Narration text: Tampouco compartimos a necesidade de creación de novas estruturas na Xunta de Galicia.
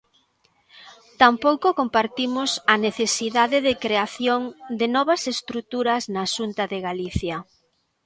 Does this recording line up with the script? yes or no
yes